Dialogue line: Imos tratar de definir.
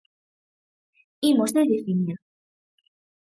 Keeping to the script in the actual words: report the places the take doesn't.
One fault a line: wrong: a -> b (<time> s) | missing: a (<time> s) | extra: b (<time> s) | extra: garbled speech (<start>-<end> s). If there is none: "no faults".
missing: tratar (1.5 s)